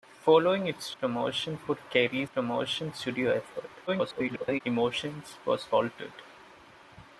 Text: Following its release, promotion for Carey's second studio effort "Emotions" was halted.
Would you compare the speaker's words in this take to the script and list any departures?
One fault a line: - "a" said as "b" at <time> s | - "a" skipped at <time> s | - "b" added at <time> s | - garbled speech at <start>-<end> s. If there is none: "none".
- "release" skipped at 0.9 s
- "second" said as "promotion" at 2.3 s
- garbled speech at 3.9-4.6 s